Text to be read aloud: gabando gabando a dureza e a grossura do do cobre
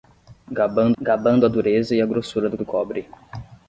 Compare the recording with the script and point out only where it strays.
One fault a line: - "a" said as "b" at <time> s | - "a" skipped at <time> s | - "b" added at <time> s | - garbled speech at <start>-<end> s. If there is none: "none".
none